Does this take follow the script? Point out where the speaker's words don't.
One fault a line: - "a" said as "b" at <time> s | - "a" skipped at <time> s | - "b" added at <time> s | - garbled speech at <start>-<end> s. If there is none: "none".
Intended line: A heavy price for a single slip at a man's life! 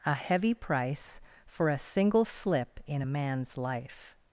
- "at" said as "in" at 2.9 s